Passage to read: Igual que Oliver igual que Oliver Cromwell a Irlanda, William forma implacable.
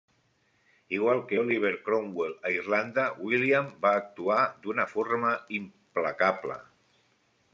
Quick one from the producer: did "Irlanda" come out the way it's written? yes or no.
yes